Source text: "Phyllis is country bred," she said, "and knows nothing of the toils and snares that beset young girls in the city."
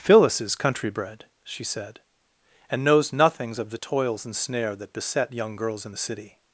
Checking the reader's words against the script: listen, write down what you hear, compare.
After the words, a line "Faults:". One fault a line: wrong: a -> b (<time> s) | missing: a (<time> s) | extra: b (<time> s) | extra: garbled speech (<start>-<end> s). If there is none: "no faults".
"Phyllis is country bred," she said, "and knows nothings of the toils and snare that beset young girls in the city."
Faults:
wrong: nothing -> nothings (3.1 s)
wrong: snares -> snare (4.4 s)